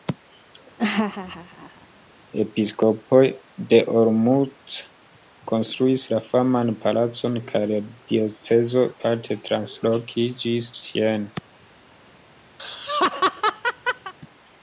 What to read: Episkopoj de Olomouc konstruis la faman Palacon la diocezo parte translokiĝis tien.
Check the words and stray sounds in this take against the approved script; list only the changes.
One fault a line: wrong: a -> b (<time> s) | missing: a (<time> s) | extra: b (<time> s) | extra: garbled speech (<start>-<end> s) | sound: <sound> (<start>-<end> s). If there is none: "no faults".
sound: laugh (0.8-1.9 s)
extra: kaj (7.5 s)
sound: laugh (12.6-14.1 s)